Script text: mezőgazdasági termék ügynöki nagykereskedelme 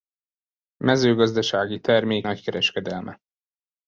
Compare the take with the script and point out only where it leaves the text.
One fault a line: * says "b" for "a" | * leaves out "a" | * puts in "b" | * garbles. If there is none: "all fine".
* leaves out "ügynöki"